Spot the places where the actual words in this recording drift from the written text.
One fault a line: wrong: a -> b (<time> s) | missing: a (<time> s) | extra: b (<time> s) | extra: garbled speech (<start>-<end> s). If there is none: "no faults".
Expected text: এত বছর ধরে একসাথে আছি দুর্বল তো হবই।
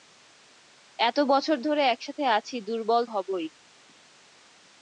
missing: তো (3.0 s)